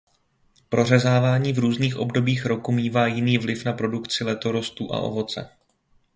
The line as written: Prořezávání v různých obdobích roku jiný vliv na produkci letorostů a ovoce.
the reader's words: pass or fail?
fail